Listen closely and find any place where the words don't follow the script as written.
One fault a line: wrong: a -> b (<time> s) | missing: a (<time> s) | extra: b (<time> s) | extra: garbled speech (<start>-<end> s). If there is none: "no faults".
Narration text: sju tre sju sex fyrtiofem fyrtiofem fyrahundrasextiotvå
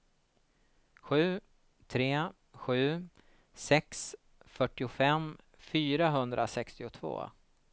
missing: fyrtiofem (5.4 s)